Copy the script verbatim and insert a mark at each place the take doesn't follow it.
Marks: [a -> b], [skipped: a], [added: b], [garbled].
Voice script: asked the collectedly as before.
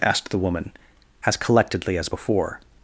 asked the [added: woman as] collectedly as before.